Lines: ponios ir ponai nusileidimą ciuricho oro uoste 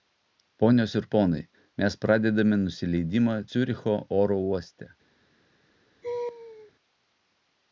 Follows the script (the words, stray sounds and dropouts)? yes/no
no